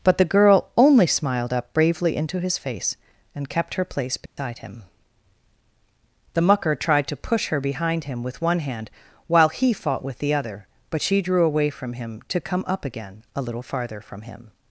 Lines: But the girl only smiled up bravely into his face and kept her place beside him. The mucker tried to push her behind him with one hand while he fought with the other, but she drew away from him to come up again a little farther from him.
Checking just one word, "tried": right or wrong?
right